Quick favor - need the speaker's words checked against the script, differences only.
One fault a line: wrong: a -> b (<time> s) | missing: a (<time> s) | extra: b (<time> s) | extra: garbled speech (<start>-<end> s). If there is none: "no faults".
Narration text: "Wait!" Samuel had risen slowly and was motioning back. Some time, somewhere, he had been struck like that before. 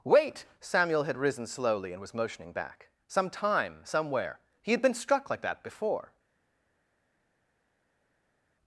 no faults